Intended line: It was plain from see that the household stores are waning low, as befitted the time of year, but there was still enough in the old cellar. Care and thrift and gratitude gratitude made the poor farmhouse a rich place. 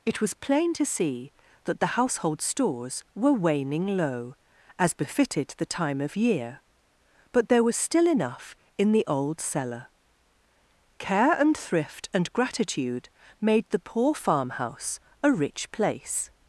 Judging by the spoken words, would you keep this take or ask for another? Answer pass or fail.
fail